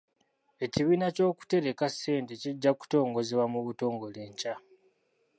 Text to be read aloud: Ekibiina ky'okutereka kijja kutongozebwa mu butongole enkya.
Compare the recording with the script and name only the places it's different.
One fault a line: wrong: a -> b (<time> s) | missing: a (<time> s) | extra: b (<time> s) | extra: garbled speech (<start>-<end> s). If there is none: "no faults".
extra: ssente (1.9 s)